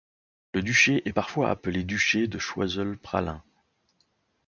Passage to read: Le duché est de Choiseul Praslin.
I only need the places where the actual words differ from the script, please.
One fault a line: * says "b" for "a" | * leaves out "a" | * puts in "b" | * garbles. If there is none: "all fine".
* puts in "parfois appelé duché"